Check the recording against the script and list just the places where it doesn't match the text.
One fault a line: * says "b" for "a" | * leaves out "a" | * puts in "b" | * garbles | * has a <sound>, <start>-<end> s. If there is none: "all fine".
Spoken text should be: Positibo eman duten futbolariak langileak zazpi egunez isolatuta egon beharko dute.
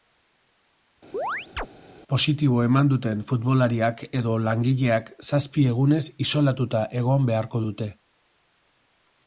* has a chirp, 1.1-1.7 s
* puts in "edo"